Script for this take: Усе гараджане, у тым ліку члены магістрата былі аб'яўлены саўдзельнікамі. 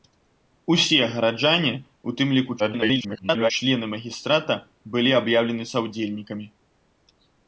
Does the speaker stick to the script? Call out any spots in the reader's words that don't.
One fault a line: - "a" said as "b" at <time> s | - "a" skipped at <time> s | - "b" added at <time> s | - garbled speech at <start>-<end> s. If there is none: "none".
- garbled speech at 2.6-3.5 s